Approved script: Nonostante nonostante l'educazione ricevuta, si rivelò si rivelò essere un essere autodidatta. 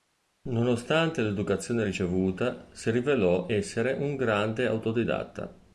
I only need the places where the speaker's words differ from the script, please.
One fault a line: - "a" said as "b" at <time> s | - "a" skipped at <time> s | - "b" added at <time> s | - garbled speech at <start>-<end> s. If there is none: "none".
- "nonostante" skipped at 1.2 s
- "si rivelò" skipped at 3.5 s
- "essere" said as "grande" at 4.1 s